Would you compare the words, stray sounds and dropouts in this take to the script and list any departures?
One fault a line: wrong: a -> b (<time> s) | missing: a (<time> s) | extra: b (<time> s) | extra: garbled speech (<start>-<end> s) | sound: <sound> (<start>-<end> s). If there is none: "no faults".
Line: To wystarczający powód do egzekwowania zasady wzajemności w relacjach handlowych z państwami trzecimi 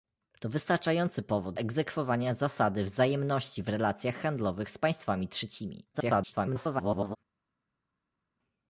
missing: do (1.6 s)
extra: garbled speech (5.9-7.2 s)